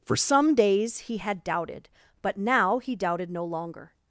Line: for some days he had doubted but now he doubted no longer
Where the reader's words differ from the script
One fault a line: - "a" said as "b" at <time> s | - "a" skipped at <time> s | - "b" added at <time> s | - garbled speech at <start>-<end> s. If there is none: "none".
none